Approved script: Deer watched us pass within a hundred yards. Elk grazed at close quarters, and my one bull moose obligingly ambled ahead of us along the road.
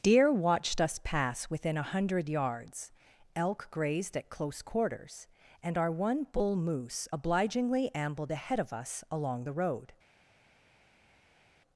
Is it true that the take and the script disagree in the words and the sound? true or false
true